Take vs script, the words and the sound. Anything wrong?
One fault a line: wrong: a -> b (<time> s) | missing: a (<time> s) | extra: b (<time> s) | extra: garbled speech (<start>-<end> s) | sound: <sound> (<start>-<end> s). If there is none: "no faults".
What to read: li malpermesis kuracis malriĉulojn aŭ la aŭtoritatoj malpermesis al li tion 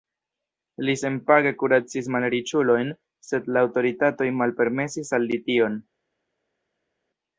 wrong: malpermesis -> senpage (1.0 s)
wrong: aŭ -> sed (3.3 s)